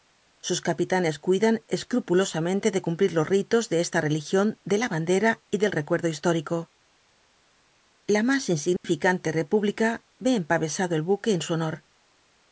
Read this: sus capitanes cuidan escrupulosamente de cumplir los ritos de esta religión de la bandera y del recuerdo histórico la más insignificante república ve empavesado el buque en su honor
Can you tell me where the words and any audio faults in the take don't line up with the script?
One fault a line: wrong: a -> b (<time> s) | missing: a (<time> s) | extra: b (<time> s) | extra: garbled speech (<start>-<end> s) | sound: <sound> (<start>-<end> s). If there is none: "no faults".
sound: dropout (8.8-8.8 s)